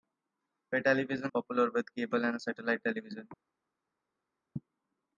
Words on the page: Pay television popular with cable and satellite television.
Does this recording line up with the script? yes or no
yes